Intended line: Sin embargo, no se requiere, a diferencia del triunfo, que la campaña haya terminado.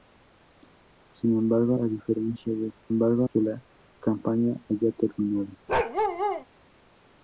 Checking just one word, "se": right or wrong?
wrong